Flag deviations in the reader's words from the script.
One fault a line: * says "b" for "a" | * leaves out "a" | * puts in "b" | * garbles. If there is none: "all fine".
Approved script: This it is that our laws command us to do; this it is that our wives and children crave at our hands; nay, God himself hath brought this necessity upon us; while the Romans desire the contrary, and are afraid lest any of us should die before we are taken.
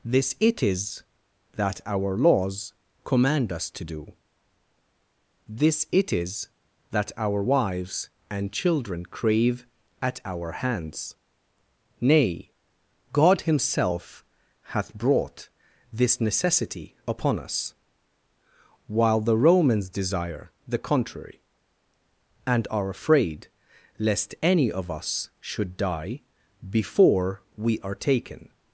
all fine